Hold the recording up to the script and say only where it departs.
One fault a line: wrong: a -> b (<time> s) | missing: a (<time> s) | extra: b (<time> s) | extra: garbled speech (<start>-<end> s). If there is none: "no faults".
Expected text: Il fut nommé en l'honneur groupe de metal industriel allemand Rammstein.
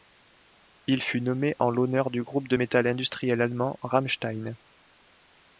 extra: du (2.1 s)